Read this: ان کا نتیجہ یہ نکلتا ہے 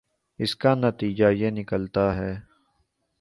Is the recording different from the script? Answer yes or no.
yes